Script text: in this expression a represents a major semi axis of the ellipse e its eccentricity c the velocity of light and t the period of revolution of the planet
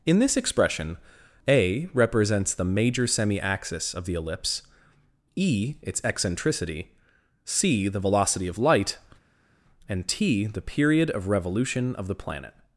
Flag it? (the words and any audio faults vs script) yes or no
yes